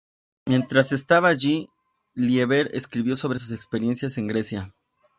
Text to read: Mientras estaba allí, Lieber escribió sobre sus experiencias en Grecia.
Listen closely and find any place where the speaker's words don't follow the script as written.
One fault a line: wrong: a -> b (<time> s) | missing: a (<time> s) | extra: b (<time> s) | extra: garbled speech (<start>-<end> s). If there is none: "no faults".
no faults